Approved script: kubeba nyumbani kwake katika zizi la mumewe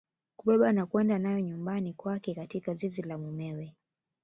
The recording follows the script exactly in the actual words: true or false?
false